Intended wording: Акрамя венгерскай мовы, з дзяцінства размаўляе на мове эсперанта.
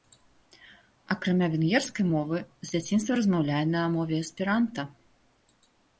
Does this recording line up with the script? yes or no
yes